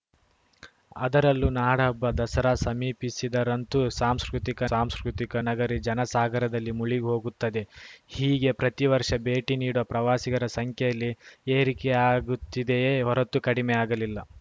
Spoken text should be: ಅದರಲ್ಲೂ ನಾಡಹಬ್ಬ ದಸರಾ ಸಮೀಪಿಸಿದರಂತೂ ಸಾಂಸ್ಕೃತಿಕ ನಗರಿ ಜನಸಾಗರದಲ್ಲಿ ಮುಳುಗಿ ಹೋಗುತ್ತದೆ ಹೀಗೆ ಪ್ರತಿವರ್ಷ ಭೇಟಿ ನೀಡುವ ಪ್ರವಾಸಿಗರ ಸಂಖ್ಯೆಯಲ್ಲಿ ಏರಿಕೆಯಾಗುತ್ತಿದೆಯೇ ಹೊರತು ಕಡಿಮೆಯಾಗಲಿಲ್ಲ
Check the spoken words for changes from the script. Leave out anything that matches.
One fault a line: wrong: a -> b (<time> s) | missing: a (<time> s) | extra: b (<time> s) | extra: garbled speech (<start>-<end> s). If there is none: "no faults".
extra: ಸಾಂಸ್ಕೃತಿಕ (4.7 s)